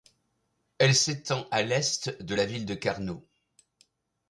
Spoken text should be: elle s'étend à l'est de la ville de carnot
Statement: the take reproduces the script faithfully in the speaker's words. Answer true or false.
true